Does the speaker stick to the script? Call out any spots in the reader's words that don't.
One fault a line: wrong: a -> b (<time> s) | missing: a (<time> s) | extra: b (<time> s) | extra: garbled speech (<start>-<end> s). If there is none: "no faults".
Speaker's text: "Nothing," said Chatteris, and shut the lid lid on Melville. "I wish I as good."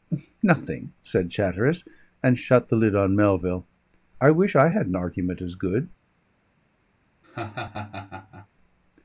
missing: lid (3.0 s)
extra: had an argument (4.7 s)